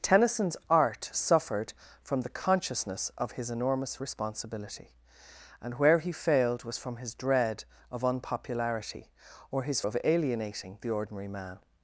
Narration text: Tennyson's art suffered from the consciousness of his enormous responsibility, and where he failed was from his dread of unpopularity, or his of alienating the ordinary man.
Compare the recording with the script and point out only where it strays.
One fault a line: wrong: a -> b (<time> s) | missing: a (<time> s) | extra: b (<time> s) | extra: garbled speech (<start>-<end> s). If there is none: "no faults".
no faults